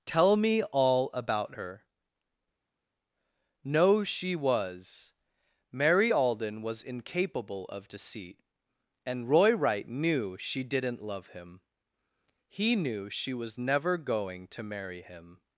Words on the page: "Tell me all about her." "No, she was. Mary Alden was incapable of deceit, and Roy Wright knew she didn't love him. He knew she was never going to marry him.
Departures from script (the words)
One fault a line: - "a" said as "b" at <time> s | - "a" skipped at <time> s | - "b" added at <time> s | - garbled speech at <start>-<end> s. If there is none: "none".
none